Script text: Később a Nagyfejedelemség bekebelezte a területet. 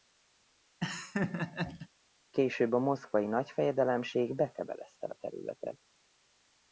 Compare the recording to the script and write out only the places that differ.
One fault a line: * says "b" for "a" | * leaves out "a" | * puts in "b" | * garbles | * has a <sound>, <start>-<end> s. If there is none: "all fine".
* has a laugh, 0.8-1.9 s
* puts in "Moszkvai"